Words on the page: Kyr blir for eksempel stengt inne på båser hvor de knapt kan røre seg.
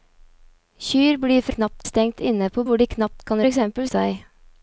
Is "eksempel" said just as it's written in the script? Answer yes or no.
no